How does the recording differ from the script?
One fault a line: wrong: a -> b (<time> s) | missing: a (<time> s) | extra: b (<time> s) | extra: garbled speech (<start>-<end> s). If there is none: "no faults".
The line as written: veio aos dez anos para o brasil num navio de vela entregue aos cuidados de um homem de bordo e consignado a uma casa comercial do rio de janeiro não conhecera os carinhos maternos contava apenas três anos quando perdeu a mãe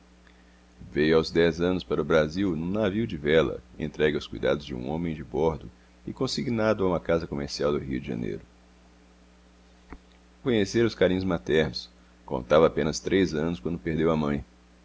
missing: não (8.4 s)